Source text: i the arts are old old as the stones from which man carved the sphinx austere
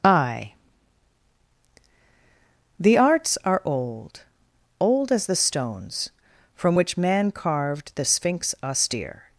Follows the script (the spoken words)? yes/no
yes